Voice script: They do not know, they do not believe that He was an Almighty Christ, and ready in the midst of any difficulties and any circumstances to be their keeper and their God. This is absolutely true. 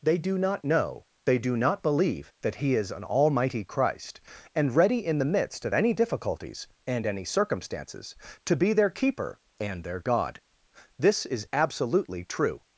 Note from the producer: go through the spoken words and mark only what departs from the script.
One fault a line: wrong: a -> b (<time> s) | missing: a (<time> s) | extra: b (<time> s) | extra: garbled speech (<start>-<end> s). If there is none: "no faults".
wrong: was -> is (2.8 s)